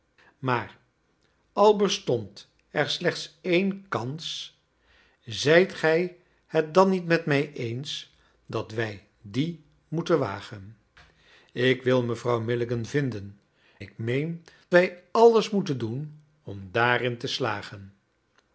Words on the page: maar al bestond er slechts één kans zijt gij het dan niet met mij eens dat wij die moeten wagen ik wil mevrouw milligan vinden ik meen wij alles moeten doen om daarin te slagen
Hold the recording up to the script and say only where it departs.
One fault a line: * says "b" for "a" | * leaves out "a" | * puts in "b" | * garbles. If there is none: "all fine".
all fine